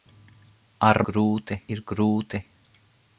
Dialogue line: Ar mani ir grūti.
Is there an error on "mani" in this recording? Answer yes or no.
yes